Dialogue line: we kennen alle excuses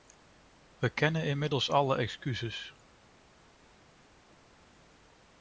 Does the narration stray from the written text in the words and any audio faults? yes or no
yes